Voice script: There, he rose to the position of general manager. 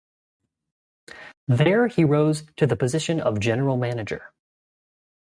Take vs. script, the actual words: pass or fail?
pass